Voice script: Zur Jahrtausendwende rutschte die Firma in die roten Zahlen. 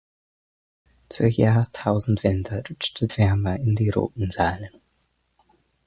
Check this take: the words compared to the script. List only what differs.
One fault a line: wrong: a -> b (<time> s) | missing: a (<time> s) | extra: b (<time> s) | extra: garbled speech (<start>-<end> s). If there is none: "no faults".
missing: die (3.1 s)